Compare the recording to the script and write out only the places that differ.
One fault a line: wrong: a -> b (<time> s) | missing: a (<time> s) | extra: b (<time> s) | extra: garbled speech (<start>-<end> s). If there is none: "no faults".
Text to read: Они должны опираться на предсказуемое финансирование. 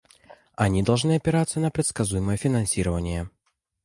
no faults